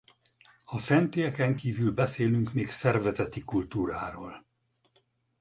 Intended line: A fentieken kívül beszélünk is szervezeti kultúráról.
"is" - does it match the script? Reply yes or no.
no